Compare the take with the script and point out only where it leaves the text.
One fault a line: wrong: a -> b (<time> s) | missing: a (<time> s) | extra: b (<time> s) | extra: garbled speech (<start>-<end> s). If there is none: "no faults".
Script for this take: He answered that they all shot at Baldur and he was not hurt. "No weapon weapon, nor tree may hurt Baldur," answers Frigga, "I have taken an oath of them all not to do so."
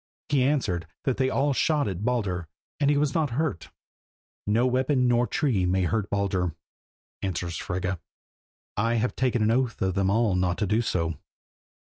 missing: weapon (5.1 s)